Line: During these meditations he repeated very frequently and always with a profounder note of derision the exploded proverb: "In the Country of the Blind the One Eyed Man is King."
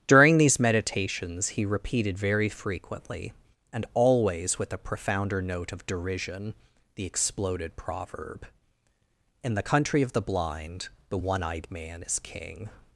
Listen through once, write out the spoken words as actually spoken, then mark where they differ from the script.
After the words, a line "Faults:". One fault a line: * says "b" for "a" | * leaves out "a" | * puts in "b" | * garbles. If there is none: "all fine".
During these meditations he repeated very frequently and always with a profounder note of derision the exploded proverb: "In the Country of the Blind the One Eyed Man is King."
Faults:
all fine